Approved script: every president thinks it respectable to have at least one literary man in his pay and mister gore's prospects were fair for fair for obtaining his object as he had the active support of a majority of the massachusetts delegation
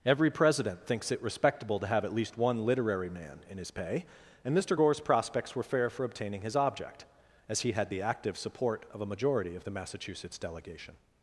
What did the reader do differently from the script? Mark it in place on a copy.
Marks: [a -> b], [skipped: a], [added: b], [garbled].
every president thinks it respectable to have at least one literary man in his pay and mister gore's prospects were fair for [skipped: fair for] obtaining his object as he had the active support of a majority of the massachusetts delegation